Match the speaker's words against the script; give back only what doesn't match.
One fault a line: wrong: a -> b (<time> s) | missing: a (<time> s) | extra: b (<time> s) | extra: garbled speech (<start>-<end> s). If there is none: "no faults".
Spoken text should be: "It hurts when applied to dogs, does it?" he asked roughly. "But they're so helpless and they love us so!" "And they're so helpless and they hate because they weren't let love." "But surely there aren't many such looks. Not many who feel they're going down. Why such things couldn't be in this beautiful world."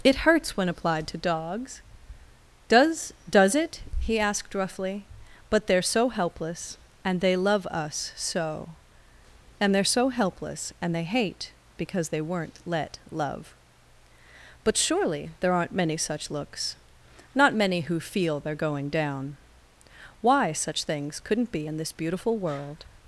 extra: does (3.3 s)